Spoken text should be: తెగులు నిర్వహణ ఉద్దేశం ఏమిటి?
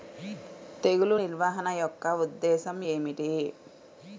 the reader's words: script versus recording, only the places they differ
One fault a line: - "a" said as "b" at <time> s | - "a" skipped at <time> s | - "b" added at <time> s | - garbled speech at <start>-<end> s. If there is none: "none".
- "యొక్క" added at 1.8 s